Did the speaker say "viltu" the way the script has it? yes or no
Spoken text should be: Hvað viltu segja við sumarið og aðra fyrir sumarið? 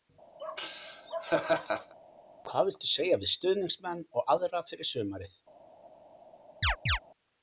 yes